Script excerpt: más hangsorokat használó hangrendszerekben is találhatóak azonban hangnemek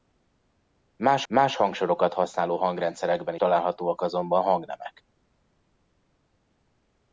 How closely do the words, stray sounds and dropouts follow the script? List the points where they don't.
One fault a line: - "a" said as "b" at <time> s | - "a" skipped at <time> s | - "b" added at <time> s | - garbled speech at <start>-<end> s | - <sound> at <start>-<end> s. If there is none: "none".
- "más" added at 1.3 s
- "is" skipped at 3.4 s